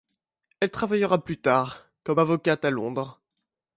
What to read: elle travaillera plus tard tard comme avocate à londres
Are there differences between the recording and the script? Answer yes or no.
yes